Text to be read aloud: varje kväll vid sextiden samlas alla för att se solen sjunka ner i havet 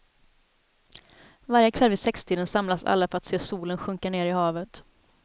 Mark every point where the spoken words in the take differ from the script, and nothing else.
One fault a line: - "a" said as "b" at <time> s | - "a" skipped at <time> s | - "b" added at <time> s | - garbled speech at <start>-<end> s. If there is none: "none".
none